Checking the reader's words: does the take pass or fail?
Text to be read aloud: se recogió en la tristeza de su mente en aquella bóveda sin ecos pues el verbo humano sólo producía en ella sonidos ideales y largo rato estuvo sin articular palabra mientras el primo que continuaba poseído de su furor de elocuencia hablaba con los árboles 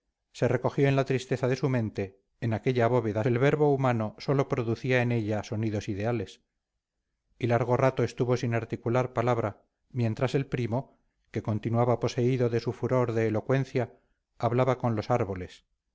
fail